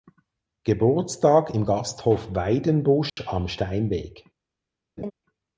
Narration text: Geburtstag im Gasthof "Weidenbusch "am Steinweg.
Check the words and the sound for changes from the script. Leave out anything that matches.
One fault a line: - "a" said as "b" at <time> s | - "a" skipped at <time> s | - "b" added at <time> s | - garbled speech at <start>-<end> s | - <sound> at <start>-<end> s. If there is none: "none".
- dropout at 3.1-3.2 s
- laugh at 5.0-5.1 s